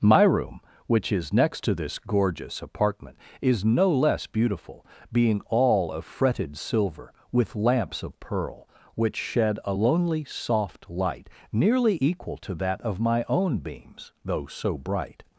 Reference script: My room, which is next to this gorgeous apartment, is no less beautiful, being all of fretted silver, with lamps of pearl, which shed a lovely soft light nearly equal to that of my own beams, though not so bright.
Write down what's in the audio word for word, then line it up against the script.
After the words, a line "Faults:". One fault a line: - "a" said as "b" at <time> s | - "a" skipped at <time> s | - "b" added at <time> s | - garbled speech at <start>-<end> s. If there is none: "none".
My room, which is next to this gorgeous apartment, is no less beautiful, being all of fretted silver, with lamps of pearl, which shed a lonely soft light nearly equal to that of my own beams, though so bright.
Faults:
- "lovely" said as "lonely" at 9.7 s
- "not" skipped at 14.5 s